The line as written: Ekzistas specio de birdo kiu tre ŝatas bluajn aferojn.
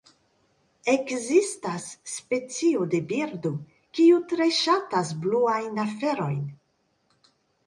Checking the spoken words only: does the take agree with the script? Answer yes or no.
yes